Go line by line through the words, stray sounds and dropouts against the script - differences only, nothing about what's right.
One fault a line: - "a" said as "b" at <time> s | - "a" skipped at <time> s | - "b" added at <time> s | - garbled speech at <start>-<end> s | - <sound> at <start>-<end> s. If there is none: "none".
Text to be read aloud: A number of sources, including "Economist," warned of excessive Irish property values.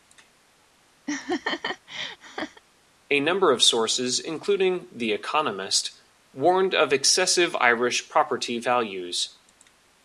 - laugh at 1.1-2.6 s
- "The" added at 4.9 s